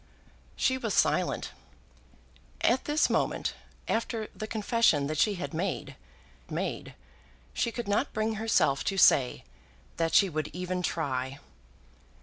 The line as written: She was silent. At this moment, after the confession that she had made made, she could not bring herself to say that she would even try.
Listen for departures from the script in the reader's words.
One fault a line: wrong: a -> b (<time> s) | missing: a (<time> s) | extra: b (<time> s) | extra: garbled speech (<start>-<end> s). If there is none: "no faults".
no faults